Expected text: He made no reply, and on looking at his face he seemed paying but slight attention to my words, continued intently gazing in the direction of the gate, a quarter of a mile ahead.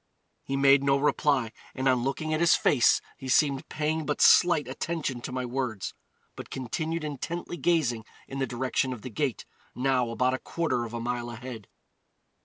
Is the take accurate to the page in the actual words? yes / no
no